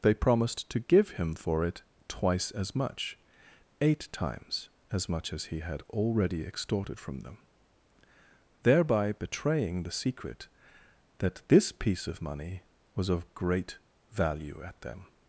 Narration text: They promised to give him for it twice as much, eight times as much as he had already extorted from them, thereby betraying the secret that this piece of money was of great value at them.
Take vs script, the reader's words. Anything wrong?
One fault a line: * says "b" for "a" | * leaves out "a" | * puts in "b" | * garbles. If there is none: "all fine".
all fine